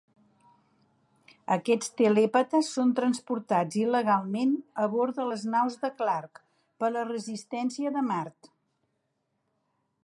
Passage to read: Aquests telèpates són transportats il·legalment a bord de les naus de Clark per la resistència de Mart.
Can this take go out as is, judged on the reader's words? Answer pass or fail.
pass